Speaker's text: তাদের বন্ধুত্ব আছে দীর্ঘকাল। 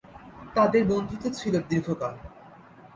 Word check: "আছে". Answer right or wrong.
wrong